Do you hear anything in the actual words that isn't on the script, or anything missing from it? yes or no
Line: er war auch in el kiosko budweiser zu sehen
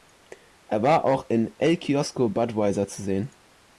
no